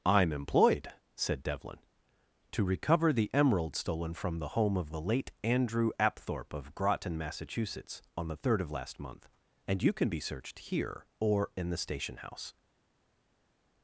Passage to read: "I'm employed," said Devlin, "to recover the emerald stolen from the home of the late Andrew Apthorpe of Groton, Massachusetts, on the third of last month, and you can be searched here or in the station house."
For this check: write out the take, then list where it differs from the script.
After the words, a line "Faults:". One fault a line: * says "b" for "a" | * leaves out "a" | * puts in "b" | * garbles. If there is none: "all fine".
"I'm employed," said Devlin, "to recover the emerald stolen from the home of the late Andrew Apthorpe of Groton, Massachusetts, on the third of last month, and you can be searched here or in the station house."
Faults:
all fine